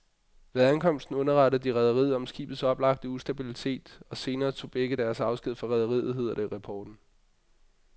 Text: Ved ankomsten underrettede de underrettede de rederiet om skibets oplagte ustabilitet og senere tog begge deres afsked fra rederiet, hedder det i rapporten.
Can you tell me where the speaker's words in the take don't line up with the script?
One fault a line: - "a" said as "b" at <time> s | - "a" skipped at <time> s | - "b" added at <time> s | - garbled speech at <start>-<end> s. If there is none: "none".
- "underrettede de" skipped at 1.8 s